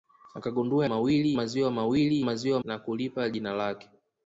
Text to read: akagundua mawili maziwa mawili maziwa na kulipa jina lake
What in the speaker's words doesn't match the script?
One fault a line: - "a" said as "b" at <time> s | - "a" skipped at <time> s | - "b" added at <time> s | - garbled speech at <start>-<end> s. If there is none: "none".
none